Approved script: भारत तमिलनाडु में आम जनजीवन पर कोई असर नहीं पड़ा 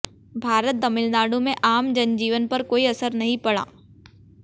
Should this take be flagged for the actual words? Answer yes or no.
no